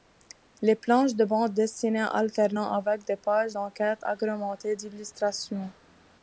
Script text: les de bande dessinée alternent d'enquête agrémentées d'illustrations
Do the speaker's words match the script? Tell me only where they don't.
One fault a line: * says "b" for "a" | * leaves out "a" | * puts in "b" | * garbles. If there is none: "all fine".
* puts in "planches"
* puts in "avec des pages"